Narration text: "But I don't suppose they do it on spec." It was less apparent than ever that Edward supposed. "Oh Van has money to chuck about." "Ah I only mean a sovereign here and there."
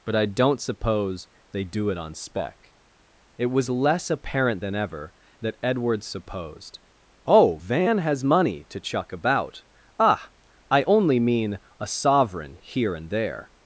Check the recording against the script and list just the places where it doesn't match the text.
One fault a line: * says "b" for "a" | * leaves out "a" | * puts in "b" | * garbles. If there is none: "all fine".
all fine